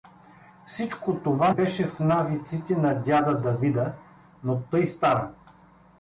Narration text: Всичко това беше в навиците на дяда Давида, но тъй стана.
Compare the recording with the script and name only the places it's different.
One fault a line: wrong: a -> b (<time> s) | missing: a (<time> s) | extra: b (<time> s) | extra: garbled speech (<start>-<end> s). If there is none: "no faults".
no faults